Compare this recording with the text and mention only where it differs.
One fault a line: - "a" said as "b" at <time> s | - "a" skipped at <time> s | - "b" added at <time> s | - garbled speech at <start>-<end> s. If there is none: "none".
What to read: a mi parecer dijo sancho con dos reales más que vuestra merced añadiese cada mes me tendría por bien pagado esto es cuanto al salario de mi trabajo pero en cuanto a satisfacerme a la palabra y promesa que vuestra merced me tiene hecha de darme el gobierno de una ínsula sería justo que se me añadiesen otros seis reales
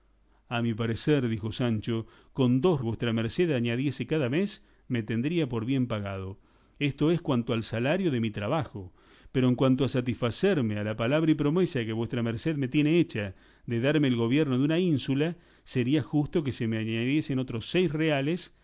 - "reales más que" skipped at 2.8 s